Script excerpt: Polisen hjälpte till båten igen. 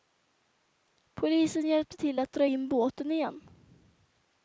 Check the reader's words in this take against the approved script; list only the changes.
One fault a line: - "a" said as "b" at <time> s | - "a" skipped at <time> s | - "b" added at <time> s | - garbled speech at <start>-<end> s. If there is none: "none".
- "att dra in" added at 2.2 s